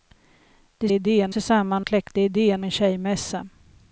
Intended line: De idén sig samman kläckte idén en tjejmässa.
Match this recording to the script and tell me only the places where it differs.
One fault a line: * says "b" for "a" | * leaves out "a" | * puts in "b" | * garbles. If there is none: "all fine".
all fine